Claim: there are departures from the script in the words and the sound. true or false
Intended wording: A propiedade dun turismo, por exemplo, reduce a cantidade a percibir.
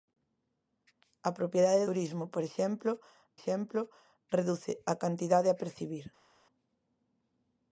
true